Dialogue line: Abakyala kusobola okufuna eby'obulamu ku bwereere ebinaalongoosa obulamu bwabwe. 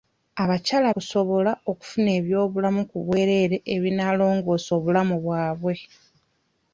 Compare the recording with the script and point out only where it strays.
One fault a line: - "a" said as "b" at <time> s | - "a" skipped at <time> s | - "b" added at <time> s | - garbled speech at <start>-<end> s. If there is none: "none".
none